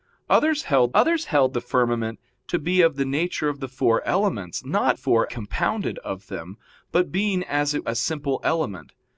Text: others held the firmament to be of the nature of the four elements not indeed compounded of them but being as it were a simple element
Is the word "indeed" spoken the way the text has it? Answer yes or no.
no